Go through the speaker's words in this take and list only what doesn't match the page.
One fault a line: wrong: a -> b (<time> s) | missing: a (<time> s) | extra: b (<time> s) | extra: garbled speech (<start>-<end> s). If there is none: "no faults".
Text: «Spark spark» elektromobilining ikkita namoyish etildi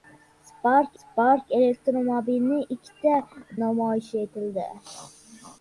no faults